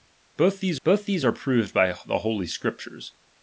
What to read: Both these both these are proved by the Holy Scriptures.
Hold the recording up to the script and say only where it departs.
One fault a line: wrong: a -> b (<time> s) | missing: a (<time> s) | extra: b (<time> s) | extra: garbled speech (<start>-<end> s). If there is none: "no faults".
no faults